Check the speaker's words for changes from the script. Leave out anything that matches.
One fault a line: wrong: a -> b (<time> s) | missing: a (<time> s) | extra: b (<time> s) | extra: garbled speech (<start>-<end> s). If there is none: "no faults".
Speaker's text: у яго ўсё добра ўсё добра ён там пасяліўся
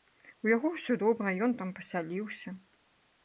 missing: ўсё добра (1.3 s)